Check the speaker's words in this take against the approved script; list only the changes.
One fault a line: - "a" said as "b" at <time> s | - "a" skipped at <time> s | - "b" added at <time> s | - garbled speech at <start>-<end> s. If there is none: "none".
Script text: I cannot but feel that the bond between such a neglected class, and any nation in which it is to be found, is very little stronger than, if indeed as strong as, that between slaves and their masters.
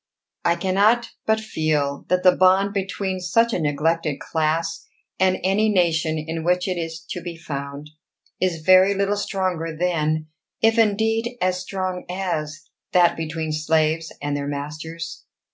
none